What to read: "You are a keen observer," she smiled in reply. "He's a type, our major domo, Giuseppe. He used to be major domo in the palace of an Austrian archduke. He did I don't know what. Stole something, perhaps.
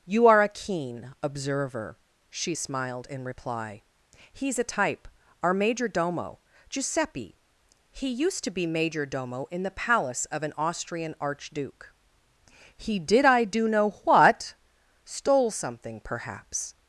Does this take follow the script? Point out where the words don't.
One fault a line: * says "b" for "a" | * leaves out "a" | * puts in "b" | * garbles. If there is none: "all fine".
* says "do" for "don't"